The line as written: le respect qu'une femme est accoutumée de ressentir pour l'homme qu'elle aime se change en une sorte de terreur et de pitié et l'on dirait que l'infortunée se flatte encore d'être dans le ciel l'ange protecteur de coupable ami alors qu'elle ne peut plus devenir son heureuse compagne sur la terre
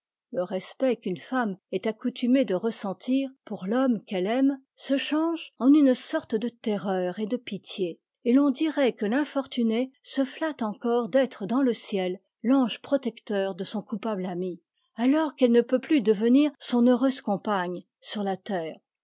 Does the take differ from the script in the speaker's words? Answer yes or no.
yes